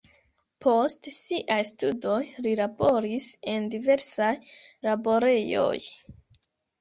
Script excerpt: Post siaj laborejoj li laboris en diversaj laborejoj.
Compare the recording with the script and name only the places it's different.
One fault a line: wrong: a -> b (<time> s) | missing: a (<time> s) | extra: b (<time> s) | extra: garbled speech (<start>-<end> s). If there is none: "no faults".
wrong: laborejoj -> studoj (1.7 s)